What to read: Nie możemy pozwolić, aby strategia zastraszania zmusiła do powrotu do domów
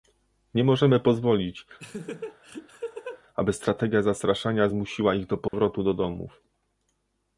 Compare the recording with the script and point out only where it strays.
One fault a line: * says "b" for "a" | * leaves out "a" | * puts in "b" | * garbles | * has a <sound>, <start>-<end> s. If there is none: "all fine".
* has a laugh, 1.8-3.2 s
* puts in "ich"
* has a dropout, 5.5-5.5 s